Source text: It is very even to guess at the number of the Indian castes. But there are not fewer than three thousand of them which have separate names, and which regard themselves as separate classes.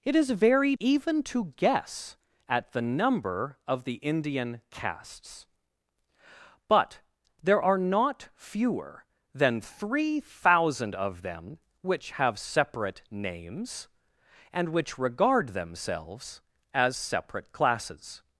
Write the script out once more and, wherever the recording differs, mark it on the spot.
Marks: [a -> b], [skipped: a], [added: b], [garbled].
It is very even to guess at the number of the Indian castes. But there are not fewer than three thousand of them which have separate names, and which regard themselves as separate classes.